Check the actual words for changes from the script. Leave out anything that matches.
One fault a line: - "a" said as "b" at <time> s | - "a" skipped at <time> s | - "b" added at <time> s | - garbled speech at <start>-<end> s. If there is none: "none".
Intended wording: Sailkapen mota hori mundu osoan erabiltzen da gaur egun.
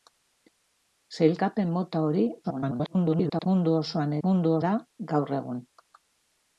- garbled speech at 2.4-3.5 s
- "erabiltzen" said as "mundu" at 4.3 s